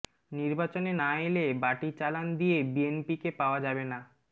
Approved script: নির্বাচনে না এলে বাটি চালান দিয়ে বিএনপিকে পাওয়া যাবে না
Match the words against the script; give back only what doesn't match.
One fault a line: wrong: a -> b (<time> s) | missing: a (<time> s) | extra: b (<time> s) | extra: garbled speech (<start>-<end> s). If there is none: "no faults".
no faults